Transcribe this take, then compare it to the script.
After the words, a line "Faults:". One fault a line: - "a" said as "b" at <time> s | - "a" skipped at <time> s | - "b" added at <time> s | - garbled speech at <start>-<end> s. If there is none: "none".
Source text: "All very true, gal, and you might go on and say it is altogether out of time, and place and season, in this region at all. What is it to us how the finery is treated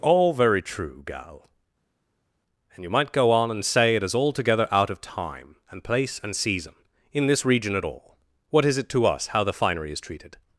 "All very true, gal, and you might go on and say it is altogether out of time, and place and season, in this region at all. What is it to us how the finery is treated
Faults:
none